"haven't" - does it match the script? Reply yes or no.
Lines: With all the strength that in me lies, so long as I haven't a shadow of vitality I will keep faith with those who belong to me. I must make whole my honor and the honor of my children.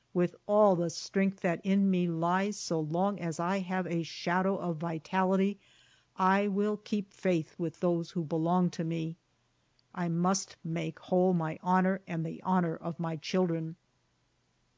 no